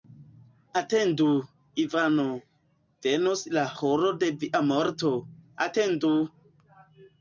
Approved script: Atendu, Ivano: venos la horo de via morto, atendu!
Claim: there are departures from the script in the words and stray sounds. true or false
false